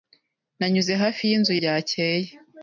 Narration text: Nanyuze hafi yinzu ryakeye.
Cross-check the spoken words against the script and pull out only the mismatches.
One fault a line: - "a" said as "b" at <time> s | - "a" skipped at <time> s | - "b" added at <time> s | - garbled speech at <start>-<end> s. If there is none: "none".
none